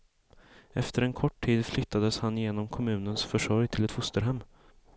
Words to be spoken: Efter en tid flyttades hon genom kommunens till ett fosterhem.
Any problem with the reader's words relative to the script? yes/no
yes